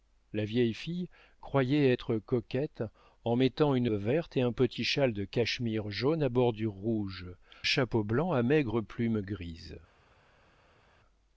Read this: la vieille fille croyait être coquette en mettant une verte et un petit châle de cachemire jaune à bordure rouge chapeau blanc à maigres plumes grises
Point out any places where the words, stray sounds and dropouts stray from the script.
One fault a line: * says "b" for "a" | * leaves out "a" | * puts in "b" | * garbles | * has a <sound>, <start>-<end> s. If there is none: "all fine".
all fine